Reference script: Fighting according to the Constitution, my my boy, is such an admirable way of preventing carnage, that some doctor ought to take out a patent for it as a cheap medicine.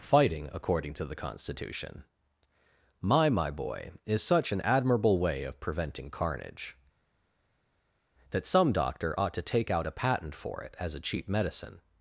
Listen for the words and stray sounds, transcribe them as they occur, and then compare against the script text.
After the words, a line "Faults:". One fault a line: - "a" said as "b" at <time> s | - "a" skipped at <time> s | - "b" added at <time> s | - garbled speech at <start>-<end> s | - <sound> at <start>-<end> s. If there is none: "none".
Fighting according to the Constitution, my my boy, is such an admirable way of preventing carnage, that some doctor ought to take out a patent for it as a cheap medicine.
Faults:
none